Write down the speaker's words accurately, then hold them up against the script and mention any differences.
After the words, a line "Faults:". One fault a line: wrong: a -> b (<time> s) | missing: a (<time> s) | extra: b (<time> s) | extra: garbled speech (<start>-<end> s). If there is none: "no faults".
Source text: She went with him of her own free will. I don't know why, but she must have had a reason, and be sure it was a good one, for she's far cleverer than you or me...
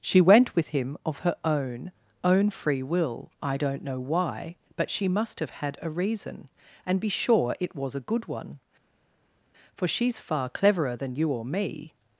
She went with him of her own own free will. I don't know why, but she must have had a reason, and be sure it was a good one, for she's far cleverer than you or me...
Faults:
extra: own (2.2 s)